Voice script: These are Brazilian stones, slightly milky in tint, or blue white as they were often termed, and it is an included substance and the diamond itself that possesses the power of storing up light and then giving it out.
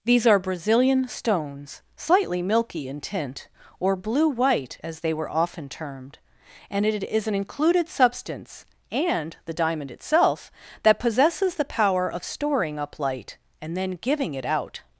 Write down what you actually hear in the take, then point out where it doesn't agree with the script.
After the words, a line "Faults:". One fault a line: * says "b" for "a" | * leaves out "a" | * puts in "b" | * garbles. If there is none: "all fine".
These are Brazilian stones, slightly milky in tint, or blue white as they were often termed, and it is an included substance and the diamond itself that possesses the power of storing up light and then giving it out.
Faults:
all fine